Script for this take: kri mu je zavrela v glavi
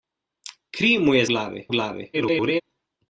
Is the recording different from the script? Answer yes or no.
yes